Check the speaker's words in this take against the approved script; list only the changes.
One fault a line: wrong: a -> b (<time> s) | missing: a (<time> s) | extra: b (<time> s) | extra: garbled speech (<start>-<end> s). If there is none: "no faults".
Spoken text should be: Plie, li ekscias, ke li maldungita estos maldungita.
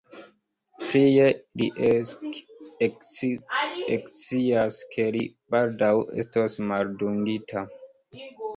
wrong: maldungita -> baldaŭ (5.6 s)